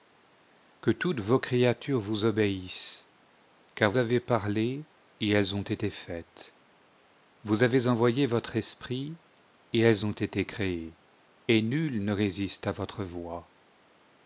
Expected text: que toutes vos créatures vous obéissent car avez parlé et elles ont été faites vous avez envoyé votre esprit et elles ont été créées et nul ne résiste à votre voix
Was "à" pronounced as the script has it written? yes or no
yes